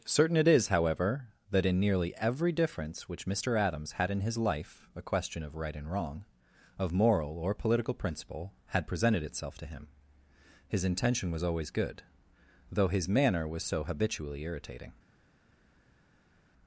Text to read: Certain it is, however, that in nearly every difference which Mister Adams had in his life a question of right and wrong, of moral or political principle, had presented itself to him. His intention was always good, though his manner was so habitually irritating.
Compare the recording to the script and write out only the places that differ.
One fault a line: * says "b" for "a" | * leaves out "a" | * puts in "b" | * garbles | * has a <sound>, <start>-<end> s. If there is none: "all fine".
all fine